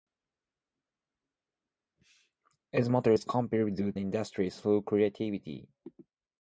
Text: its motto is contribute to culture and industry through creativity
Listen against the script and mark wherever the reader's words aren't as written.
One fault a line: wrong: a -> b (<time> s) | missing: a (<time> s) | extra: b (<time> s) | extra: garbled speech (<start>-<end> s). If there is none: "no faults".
missing: to culture and (4.0 s)